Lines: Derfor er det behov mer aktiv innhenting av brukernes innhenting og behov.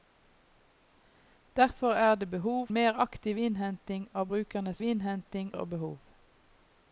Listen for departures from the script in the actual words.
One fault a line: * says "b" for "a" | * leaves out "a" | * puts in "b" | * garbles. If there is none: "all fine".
all fine